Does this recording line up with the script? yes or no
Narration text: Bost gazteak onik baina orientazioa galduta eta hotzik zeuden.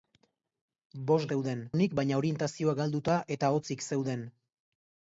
no